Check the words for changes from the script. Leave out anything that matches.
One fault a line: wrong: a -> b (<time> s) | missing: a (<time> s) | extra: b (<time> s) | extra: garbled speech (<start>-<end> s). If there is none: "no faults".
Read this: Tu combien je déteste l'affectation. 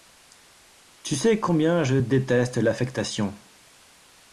extra: sais (1.1 s)